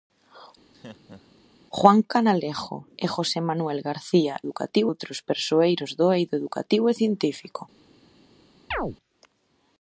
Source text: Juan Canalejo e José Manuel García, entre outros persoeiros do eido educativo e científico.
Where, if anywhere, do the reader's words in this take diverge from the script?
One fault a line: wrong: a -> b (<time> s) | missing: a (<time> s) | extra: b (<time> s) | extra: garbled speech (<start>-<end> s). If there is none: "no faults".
wrong: entre -> educativo (4.4 s)